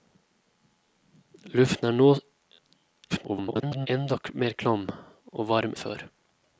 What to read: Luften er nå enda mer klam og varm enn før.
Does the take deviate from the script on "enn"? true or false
true